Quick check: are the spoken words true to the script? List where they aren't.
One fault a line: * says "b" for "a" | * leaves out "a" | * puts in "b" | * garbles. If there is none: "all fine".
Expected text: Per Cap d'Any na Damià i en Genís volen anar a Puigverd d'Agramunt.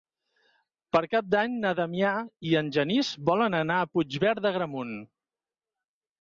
all fine